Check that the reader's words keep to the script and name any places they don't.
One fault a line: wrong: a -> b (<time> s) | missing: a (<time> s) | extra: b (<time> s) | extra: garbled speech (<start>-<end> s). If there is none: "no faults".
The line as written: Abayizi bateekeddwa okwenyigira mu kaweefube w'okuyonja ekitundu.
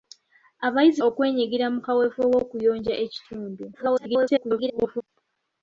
missing: bateekeddwa (1.0 s)
extra: garbled speech (3.7-5.0 s)